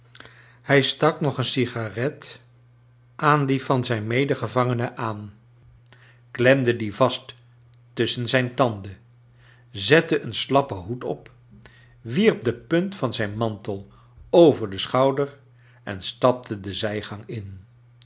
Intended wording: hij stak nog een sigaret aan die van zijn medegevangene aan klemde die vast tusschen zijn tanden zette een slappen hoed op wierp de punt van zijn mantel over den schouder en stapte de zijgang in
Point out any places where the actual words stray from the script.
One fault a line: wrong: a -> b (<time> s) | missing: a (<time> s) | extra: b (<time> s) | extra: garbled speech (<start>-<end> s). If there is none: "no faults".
no faults